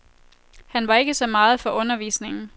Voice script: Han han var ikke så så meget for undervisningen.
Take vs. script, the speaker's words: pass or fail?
fail